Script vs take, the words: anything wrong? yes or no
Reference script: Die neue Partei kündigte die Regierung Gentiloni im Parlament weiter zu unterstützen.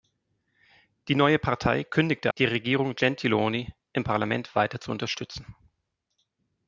no